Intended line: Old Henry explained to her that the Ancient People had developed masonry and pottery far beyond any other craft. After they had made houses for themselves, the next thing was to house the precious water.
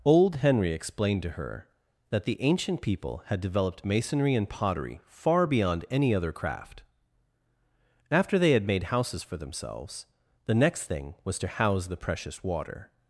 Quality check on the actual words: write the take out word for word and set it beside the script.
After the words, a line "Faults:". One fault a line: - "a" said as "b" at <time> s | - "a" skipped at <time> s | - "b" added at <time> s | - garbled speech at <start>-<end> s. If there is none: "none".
Old Henry explained to her that the Ancient People had developed masonry and pottery far beyond any other craft. After they had made houses for themselves, the next thing was to house the precious water.
Faults:
none